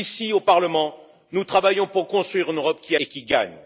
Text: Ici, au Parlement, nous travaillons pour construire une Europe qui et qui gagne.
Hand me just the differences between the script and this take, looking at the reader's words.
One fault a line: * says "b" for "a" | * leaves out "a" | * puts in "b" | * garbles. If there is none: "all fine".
all fine